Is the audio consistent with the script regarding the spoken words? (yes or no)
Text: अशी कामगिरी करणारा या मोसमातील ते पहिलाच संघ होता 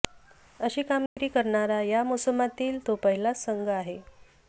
no